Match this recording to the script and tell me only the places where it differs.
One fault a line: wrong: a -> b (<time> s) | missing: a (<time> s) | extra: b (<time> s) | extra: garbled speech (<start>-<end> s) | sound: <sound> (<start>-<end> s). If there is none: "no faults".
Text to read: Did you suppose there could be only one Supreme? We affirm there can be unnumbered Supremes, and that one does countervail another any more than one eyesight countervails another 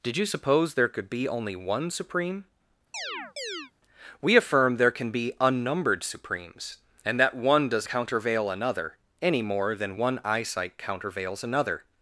sound: chirp (2.9-3.7 s)